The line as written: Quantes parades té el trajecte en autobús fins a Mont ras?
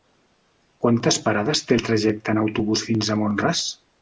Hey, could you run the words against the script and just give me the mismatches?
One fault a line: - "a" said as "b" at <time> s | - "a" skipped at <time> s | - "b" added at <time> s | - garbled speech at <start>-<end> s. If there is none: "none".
none